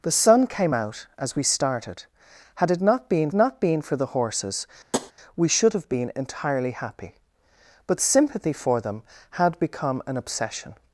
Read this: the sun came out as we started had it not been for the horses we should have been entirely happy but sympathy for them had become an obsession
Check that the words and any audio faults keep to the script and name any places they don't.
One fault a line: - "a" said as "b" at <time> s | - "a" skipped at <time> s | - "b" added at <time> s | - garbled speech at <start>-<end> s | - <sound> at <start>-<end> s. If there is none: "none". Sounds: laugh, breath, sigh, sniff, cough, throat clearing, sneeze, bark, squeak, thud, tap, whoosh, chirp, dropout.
- "not been" added at 3.3 s
- tap at 4.9-5.1 s